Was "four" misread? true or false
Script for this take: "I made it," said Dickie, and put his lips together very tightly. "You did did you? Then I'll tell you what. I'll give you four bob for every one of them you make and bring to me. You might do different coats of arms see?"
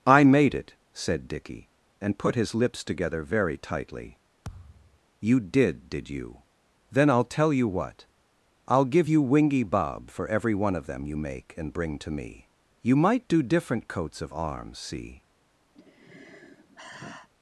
true